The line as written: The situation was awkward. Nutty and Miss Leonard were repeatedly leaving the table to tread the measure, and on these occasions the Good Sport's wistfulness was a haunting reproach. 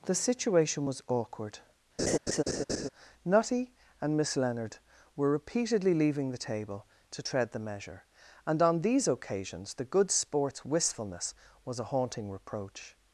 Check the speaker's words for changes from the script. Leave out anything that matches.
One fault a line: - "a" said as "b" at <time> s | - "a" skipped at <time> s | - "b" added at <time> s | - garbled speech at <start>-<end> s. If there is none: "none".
none